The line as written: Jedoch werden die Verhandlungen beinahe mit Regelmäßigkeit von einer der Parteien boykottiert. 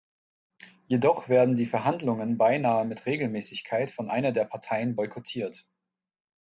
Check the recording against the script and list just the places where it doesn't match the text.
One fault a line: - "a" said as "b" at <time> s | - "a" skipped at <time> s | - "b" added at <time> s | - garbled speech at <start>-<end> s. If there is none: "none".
none